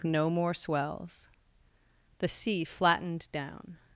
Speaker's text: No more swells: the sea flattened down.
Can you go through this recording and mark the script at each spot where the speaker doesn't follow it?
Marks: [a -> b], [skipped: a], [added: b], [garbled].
No more swells: the sea flattened down.